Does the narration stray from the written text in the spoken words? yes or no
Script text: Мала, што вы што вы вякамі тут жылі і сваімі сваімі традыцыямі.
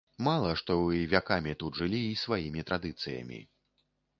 yes